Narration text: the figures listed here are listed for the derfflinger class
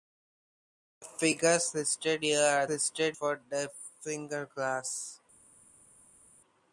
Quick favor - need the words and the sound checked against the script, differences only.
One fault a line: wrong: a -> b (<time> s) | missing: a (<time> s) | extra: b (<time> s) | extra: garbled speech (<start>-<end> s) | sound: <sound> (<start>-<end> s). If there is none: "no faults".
no faults